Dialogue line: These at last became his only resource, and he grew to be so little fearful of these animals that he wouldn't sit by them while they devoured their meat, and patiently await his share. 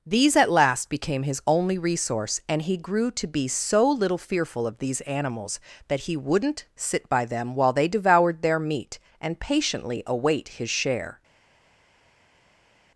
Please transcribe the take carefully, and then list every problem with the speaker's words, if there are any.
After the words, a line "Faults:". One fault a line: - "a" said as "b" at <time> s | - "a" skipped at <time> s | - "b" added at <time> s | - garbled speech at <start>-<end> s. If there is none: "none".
These at last became his only resource, and he grew to be so little fearful of these animals that he wouldn't sit by them while they devoured their meat, and patiently await his share.
Faults:
none